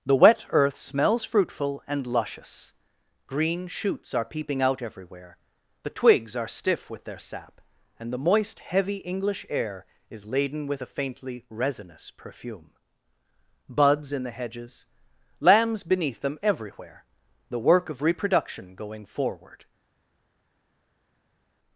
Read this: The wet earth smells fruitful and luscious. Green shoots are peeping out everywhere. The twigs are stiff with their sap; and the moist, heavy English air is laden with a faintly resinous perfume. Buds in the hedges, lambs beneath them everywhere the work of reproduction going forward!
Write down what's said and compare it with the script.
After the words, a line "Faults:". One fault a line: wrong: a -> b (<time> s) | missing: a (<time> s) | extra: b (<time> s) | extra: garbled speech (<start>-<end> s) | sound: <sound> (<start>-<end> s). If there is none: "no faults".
The wet earth smells fruitful and luscious. Green shoots are peeping out everywhere. The twigs are stiff with their sap; and the moist, heavy English air is laden with a faintly resinous perfume. Buds in the hedges, lambs beneath them everywhere the work of reproduction going forward!
Faults:
no faults